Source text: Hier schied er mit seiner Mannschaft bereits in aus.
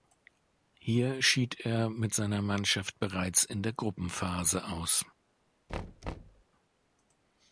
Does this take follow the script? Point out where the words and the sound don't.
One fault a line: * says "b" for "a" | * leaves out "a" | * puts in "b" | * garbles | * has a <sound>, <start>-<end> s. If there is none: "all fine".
* puts in "der Gruppenphase"
* has a thud, 5.7-6.4 s